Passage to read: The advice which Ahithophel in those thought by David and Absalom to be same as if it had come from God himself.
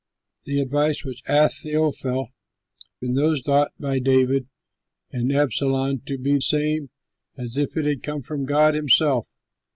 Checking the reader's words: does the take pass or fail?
pass